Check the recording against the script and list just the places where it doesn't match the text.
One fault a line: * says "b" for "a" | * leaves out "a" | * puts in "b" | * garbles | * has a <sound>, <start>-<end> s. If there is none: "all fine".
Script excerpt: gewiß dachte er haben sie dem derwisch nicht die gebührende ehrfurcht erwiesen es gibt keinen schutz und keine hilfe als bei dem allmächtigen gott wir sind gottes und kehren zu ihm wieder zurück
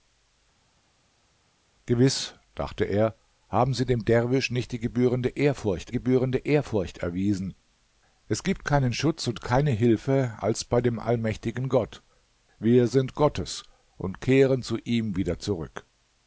* puts in "gebührende ehrfurcht"